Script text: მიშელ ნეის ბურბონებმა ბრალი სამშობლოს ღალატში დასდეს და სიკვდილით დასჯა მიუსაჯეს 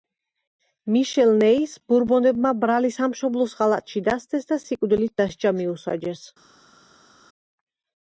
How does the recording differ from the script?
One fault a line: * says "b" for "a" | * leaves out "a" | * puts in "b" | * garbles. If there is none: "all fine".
all fine